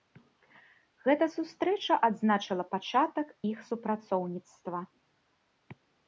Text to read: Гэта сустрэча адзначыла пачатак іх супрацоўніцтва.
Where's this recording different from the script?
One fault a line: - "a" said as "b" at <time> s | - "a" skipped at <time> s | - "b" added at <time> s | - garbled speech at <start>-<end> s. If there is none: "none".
none